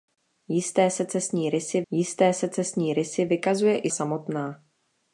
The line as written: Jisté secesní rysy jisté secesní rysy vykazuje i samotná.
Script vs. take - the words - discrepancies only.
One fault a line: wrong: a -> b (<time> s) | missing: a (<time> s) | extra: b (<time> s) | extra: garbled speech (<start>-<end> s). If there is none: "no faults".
no faults